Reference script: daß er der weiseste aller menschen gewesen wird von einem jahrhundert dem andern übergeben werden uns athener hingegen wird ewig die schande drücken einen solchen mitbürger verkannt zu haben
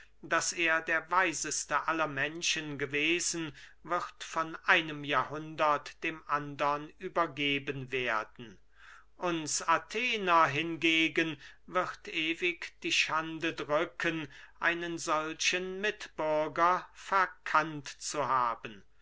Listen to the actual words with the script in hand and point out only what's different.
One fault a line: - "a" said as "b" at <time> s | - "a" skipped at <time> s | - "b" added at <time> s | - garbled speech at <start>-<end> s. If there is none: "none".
none